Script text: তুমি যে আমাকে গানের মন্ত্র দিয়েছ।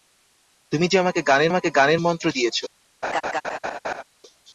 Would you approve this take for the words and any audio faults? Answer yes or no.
no